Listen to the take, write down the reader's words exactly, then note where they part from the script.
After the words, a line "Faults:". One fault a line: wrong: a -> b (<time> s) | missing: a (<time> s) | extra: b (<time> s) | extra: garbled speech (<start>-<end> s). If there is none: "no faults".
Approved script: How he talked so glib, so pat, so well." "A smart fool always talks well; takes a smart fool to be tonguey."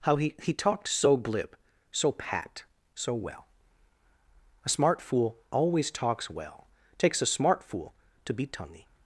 How he he talked so glib, so pat, so well." "A smart fool always talks well; takes a smart fool to be tonguey."
Faults:
extra: he (0.4 s)